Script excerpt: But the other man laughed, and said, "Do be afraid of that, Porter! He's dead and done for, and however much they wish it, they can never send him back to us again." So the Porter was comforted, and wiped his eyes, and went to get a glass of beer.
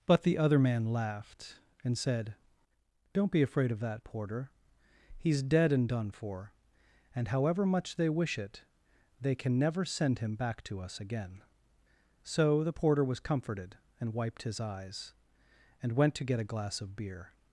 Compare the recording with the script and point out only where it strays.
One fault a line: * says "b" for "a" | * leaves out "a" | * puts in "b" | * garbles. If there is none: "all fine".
* says "Don't" for "Do"